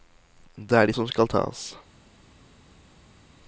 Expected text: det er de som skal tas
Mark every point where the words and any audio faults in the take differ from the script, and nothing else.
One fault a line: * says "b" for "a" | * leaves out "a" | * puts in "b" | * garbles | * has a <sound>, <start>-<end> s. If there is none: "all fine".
all fine